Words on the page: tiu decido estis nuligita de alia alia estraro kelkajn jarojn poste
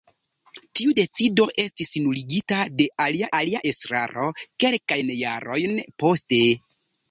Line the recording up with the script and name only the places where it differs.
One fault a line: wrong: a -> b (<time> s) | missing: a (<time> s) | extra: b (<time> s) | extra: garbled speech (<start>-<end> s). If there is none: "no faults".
no faults